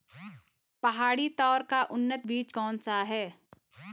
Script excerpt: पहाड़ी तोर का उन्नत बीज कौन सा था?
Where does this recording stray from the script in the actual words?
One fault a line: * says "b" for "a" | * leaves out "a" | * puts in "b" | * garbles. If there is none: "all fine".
* says "है" for "था"